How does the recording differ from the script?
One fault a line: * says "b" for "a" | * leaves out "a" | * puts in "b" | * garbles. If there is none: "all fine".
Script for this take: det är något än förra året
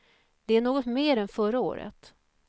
* puts in "mer"